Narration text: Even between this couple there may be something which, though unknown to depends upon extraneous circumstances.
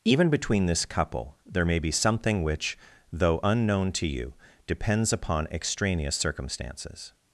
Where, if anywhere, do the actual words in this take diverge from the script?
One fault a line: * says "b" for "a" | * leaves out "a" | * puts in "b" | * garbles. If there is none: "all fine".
* puts in "you"